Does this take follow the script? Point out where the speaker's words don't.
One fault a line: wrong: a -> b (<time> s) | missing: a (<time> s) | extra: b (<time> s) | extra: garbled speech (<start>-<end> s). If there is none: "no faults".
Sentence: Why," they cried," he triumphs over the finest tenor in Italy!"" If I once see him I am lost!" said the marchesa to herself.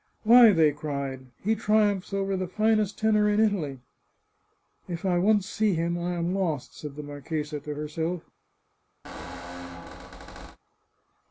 no faults